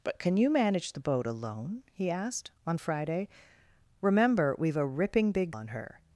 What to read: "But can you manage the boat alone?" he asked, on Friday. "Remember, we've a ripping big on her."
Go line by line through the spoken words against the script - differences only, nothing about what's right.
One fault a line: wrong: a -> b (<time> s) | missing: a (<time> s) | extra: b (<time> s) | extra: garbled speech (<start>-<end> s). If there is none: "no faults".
no faults